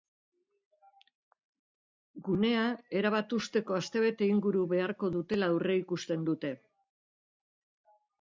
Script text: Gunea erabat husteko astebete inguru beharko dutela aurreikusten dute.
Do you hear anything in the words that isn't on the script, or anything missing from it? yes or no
no